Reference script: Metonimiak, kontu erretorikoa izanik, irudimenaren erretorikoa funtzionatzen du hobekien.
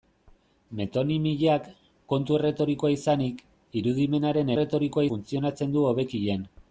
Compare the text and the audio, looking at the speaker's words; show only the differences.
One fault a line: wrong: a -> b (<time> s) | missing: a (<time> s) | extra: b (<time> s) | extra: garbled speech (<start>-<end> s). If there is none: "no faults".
no faults